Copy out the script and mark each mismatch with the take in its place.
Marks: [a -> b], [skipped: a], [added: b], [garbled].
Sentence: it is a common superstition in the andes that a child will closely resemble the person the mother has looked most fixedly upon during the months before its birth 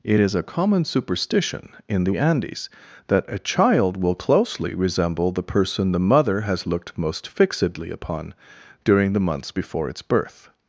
it is a common superstition in the andes that a child will closely resemble the person the mother has looked most fixedly upon during the months before its birth